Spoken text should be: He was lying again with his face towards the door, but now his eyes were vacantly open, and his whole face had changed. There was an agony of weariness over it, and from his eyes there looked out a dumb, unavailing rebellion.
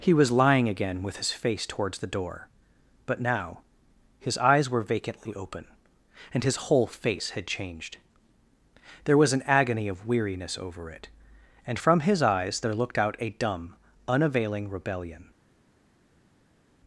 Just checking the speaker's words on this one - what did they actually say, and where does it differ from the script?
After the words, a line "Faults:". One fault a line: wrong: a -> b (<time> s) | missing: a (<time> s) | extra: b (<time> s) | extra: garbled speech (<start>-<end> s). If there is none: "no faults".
He was lying again with his face towards the door, but now his eyes were vacantly open, and his whole face had changed. There was an agony of weariness over it, and from his eyes there looked out a dumb, unavailing rebellion.
Faults:
no faults